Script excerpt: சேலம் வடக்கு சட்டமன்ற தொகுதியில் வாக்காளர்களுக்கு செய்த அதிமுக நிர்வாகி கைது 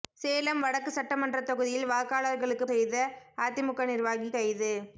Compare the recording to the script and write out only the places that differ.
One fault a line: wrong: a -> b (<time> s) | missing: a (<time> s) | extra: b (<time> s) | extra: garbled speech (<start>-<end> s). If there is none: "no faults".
no faults